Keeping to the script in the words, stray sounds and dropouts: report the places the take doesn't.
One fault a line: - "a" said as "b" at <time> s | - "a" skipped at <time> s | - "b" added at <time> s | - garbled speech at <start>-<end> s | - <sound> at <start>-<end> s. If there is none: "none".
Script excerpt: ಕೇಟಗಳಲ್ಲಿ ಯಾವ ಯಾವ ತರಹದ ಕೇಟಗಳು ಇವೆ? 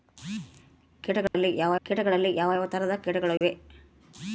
- dropout at 1.3-1.3 s
- "ಕೇಟಗಳಲ್ಲಿ ಯಾವ" added at 1.8 s
- dropout at 3.4-3.4 s